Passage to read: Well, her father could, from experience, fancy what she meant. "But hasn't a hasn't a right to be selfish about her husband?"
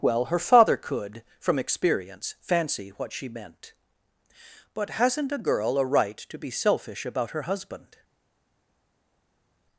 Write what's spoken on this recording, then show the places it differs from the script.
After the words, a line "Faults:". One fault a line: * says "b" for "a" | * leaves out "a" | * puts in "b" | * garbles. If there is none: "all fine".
Well, her father could, from experience, fancy what she meant. "But hasn't a girl a right to be selfish about her husband?"
Faults:
* says "girl" for "hasn't"